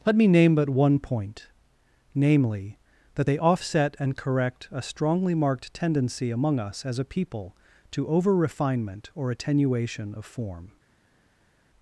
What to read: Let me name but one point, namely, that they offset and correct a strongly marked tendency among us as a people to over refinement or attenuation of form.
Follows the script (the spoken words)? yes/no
yes